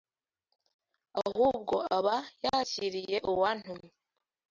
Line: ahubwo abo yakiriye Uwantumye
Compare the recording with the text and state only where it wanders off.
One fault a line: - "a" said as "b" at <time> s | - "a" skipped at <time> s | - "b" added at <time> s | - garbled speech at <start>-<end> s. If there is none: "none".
- "abo" said as "aba" at 2.0 s